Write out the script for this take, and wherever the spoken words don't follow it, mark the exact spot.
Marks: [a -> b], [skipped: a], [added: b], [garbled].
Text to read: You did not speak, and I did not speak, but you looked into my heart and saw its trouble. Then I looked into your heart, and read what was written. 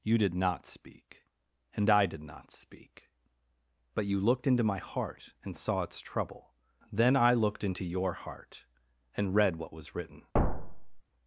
You did not speak, and I did not speak, but you looked into my heart and saw its trouble. Then I looked into your heart, and read what was written.